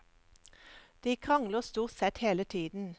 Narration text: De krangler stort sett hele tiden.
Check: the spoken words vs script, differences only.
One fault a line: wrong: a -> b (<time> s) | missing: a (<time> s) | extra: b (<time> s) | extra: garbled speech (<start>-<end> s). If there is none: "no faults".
no faults